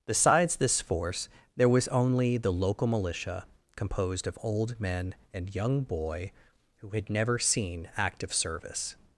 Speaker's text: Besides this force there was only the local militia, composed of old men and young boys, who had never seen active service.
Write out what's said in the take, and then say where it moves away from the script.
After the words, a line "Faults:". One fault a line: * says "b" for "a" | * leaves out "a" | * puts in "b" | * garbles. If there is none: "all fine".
Besides this force there was only the local militia, composed of old men and young boy, who had never seen active service.
Faults:
* says "boy" for "boys"